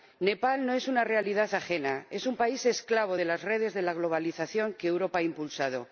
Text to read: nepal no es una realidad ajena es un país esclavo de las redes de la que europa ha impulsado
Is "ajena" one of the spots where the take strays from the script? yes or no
no